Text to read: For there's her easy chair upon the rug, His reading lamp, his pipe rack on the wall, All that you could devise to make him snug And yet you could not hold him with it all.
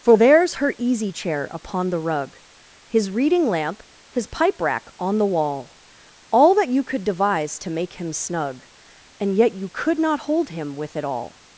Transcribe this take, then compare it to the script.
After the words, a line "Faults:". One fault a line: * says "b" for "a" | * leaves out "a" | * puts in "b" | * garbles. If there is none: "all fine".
For there's her easy chair upon the rug, His reading lamp, his pipe rack on the wall, All that you could devise to make him snug And yet you could not hold him with it all.
Faults:
all fine